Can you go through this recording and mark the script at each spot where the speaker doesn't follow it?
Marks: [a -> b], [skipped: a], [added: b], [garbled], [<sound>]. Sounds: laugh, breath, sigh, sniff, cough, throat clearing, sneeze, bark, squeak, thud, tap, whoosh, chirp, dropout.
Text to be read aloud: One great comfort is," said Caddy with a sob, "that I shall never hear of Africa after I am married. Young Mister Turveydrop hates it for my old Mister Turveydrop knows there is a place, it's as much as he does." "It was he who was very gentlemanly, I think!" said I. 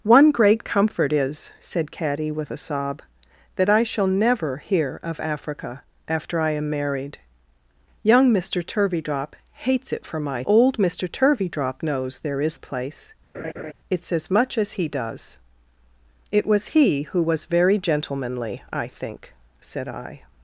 One great comfort is," said Caddy with a sob, "that I shall never hear of Africa after I am married. Young Mister Turveydrop hates it for my old Mister Turveydrop knows there is a place, [laugh] it's as much as he does." "It was he who was very gentlemanly, I think!" said I.